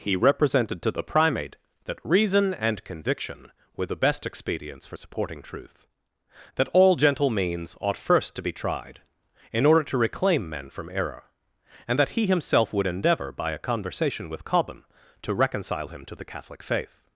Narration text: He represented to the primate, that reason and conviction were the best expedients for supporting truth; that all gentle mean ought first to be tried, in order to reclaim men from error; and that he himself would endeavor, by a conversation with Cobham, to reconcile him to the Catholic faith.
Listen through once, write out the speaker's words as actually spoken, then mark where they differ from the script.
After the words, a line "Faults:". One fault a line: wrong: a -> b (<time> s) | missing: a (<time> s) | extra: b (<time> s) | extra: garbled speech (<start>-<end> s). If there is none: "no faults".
He represented to the primate, that reason and conviction were the best expedients for supporting truth; that all gentle means ought first to be tried, in order to reclaim men from error; and that he himself would endeavor, by a conversation with Cobham, to reconcile him to the Catholic faith.
Faults:
wrong: mean -> means (7.3 s)